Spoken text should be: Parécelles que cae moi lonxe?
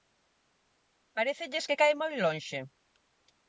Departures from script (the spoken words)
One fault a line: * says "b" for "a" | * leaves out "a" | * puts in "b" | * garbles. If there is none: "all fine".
all fine